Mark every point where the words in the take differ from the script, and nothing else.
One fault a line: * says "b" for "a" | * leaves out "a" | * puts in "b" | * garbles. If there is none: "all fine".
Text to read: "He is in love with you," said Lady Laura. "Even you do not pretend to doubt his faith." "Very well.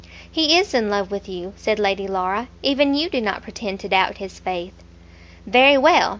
all fine